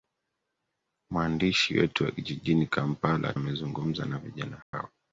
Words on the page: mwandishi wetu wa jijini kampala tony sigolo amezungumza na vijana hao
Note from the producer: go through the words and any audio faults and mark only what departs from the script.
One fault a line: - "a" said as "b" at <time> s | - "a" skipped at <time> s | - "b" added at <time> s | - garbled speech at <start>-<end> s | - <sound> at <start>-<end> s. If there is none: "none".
- "tony sigolo" skipped at 3.3 s
- dropout at 4.6-4.7 s